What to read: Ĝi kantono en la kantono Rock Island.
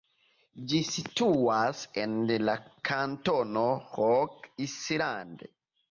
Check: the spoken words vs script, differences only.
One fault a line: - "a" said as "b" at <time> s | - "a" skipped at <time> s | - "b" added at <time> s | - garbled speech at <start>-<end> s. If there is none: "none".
- "kantono" said as "situas" at 0.9 s